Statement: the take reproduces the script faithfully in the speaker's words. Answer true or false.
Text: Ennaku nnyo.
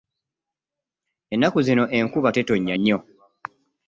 false